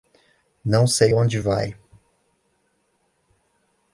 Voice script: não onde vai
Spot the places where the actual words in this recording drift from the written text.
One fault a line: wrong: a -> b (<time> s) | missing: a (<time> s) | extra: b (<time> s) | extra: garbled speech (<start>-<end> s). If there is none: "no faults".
extra: sei (0.9 s)